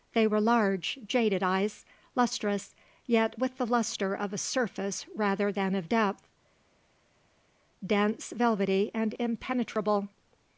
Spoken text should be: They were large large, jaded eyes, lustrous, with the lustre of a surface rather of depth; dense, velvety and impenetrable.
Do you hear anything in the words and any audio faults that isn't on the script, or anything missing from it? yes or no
yes